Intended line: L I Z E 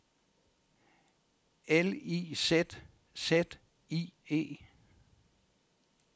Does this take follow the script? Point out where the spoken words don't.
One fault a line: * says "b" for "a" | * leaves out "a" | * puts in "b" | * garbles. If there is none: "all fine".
* puts in "Z I"